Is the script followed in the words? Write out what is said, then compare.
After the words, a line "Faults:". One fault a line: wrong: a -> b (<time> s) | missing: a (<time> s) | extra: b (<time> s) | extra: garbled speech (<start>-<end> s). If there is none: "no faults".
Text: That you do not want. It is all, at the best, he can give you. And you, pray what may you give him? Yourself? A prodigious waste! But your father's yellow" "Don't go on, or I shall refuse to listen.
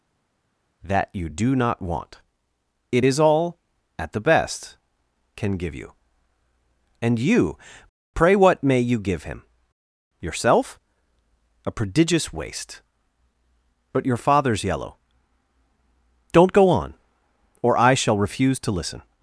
That you do not want. It is all, at the best, can give you. And you, pray what may you give him? Yourself? A prodigious waste! But your father's yellow" "Don't go on, or I shall refuse to listen.
Faults:
missing: he (4.8 s)